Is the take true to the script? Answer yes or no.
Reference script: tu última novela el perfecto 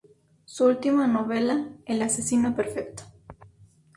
no